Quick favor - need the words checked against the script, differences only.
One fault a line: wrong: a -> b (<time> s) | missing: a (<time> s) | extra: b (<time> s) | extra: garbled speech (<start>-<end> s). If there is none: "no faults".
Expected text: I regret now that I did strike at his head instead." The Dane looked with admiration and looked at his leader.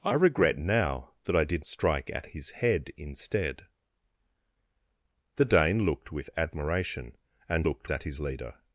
no faults